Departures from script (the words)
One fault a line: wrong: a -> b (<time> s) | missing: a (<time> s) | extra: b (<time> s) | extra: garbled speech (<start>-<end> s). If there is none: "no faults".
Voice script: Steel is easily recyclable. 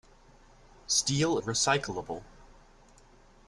missing: is easily (1.4 s)